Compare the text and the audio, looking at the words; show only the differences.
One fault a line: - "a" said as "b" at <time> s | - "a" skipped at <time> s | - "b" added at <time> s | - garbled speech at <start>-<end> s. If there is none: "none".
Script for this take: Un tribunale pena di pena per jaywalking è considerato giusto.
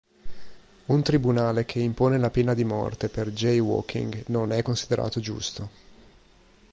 - "che impone la" added at 1.6 s
- "pena" said as "morte" at 2.6 s
- "non" added at 4.3 s